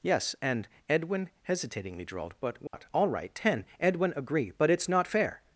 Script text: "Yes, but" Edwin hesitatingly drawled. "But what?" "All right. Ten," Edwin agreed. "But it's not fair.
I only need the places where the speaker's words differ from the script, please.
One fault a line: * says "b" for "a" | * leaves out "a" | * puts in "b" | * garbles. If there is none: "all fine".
* says "and" for "but"
* says "agree" for "agreed"